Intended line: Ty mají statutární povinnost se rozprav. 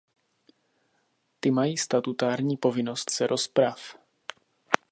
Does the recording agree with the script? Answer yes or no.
yes